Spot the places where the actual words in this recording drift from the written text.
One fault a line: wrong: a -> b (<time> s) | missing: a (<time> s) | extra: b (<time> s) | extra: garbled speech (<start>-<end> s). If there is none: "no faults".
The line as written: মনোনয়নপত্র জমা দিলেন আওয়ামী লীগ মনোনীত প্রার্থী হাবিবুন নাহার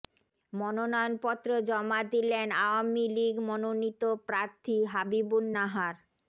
no faults